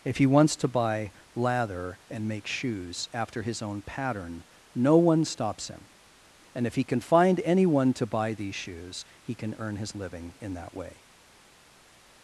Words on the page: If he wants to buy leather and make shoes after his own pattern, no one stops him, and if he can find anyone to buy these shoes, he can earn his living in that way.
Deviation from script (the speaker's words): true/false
true